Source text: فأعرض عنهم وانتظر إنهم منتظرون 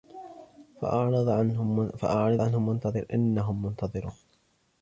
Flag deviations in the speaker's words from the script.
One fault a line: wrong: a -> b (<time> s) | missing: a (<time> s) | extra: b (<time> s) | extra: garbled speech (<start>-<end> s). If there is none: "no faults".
no faults